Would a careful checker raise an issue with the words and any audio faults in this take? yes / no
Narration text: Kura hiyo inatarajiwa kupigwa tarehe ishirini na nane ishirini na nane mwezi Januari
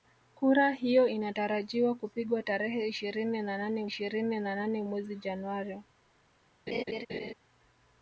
yes